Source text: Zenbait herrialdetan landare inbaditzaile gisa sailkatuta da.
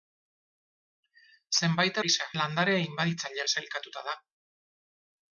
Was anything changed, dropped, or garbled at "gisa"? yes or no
yes